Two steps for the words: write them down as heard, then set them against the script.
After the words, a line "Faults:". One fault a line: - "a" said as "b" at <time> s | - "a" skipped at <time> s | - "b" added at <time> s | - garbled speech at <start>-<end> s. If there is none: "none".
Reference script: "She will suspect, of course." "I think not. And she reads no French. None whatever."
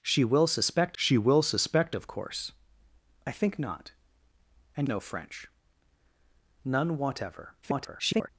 "She will suspect she will suspect, of course." "I think not. And no French. None whatever." [garbled]
Faults:
- "she will suspect" added at 0.9 s
- "she reads" skipped at 4.9 s
- garbled speech at 7.6-8.3 s